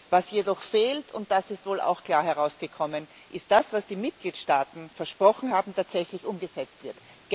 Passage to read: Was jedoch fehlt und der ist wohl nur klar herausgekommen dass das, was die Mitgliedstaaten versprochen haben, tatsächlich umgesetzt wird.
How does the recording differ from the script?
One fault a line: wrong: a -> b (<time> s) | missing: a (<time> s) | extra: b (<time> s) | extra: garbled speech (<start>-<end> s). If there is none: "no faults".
wrong: der -> das (1.3 s)
wrong: nur -> auch (1.8 s)
extra: ist (3.3 s)